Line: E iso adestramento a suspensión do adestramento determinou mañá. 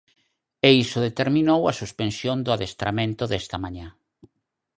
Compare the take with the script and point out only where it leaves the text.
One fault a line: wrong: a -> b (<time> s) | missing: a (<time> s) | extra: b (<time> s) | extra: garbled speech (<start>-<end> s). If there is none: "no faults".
wrong: adestramento -> determinou (1.1 s)
wrong: determinou -> desta (3.3 s)